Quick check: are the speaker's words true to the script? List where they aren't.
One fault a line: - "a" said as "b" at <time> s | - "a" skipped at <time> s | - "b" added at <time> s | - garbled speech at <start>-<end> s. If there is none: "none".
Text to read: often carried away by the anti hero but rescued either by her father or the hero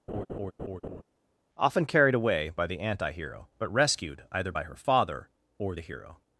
none